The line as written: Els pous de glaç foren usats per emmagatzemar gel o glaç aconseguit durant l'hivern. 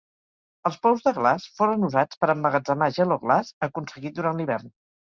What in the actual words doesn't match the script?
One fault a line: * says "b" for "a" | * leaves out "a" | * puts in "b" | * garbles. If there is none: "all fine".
all fine